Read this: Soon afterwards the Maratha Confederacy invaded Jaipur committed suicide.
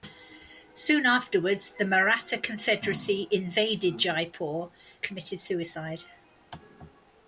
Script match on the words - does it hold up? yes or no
yes